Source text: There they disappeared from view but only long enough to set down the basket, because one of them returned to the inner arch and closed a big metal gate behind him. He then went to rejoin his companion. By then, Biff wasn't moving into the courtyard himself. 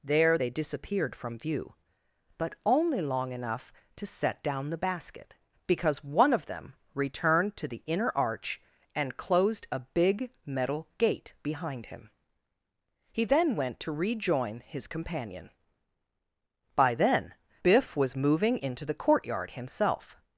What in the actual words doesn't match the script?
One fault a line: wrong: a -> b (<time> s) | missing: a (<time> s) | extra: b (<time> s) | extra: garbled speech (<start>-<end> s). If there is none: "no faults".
wrong: wasn't -> was (18.0 s)